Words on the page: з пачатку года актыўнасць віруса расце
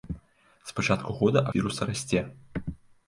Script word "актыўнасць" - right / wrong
wrong